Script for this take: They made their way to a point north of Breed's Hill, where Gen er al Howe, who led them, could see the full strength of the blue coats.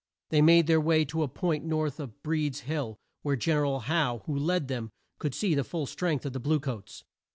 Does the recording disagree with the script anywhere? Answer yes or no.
no